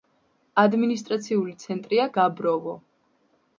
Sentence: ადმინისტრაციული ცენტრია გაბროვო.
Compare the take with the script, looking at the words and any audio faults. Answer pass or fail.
pass